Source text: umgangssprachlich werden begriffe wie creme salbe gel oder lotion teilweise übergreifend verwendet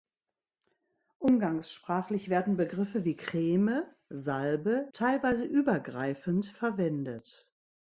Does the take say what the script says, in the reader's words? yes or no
no